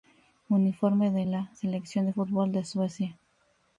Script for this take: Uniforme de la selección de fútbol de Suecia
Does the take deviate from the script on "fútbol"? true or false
false